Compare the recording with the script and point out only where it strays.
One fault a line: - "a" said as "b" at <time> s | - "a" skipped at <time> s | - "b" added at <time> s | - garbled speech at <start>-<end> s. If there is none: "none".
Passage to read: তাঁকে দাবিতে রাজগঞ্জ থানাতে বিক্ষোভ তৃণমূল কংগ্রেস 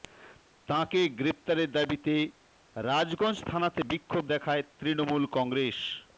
- "গ্রেফতারের" added at 1.2 s
- "দেখায়" added at 4.3 s